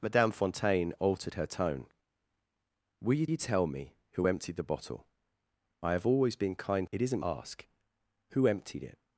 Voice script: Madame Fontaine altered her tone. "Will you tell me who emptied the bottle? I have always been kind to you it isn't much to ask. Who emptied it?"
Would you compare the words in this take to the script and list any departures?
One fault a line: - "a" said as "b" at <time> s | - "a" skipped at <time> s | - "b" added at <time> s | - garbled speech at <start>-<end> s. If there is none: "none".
- "you" added at 3.3 s
- "to you" skipped at 6.9 s
- "much to" skipped at 7.2 s